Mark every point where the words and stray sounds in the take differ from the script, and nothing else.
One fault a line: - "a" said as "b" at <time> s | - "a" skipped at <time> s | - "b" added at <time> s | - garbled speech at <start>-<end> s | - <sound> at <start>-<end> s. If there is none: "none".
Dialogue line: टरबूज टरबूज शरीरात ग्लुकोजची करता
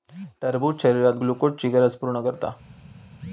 - "टरबूज" skipped at 0.8 s
- "गरज पूर्ण" added at 1.7 s